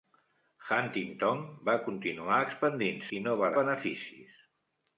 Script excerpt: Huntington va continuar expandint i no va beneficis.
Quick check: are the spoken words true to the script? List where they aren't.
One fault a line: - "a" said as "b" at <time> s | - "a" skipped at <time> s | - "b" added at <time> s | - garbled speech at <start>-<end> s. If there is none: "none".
none